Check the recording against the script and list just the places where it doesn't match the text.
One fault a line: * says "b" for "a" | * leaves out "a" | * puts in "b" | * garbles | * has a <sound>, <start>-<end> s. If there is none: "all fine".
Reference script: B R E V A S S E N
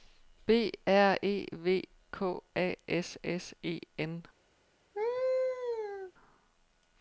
* puts in "K"
* has a laugh, 4.9-6.1 s